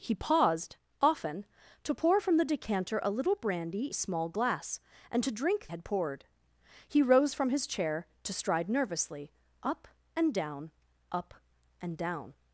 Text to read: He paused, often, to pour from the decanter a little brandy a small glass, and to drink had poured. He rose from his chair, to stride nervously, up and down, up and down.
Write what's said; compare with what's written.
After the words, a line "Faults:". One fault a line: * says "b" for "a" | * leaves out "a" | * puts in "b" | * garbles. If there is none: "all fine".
He paused, often, to pour from the decanter a little brandy a small glass, and to drink had poured. He rose from his chair, to stride nervously, up and down, up and down.
Faults:
all fine